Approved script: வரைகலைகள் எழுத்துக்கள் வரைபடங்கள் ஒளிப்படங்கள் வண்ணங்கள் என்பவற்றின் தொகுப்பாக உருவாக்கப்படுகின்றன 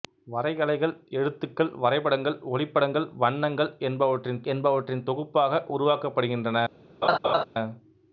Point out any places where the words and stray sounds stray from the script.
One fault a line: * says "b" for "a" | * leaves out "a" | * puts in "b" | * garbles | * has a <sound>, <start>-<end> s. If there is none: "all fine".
* puts in "என்பவற்றின்"
* has a laugh, 7.0-7.4 s